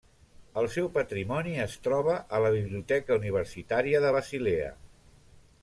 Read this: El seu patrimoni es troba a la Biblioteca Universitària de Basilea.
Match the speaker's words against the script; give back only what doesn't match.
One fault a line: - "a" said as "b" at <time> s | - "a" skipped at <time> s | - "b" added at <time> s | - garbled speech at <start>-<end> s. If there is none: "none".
none